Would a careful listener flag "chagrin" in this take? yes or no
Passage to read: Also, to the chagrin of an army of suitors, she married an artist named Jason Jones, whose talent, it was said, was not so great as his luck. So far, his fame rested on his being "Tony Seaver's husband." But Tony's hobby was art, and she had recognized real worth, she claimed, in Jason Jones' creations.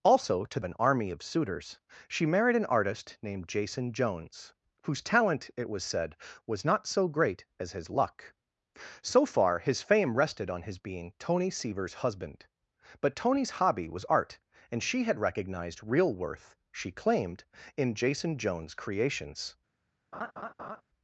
yes